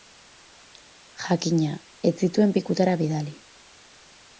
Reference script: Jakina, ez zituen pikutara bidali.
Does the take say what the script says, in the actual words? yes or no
yes